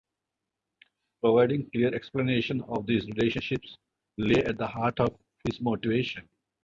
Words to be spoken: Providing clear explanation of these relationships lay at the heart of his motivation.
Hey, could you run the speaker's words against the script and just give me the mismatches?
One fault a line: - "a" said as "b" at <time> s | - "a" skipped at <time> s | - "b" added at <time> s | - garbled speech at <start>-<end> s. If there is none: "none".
none